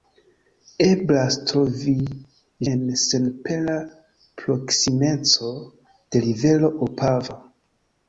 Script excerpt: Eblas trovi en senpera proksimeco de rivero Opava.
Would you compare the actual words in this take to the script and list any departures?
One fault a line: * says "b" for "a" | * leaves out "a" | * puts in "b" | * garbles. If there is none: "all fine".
all fine